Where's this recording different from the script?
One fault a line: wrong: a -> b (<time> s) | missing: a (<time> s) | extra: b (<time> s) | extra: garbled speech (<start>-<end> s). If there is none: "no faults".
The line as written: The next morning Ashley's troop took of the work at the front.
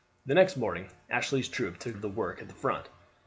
no faults